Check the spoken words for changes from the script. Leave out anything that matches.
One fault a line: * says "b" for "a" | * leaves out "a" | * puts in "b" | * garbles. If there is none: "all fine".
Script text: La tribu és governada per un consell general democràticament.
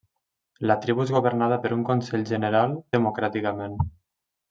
all fine